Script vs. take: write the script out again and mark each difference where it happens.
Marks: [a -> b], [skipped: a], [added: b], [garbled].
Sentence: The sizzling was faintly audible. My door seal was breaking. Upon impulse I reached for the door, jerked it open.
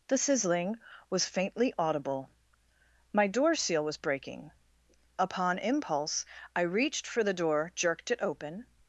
The sizzling was faintly audible. My door seal was breaking. Upon impulse I reached for the door, jerked it open.